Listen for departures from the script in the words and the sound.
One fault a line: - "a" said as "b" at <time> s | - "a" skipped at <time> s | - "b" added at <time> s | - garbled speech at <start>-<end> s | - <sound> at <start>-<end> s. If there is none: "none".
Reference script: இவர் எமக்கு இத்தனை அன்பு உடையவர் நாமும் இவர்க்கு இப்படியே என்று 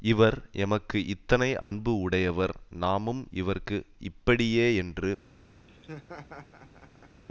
- dropout at 1.6-1.7 s
- laugh at 5.7-7.2 s